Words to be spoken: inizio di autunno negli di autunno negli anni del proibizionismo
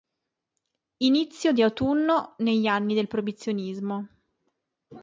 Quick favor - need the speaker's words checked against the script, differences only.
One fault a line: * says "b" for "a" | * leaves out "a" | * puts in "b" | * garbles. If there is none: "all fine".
* leaves out "di autunno negli"